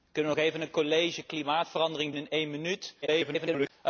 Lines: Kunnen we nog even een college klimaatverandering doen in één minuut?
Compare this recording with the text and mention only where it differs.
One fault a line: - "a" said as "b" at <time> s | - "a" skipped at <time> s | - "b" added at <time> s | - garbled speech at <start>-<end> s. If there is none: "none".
- "doen" skipped at 2.1 s
- garbled speech at 3.0-3.7 s